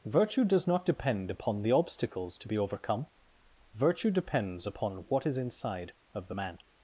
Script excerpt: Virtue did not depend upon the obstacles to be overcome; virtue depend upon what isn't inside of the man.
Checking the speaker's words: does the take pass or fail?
fail